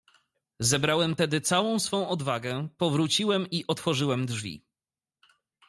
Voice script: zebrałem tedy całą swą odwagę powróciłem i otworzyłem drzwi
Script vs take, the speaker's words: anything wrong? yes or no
no